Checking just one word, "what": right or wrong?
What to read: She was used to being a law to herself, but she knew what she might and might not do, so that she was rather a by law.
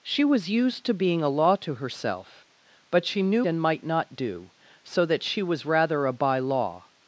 wrong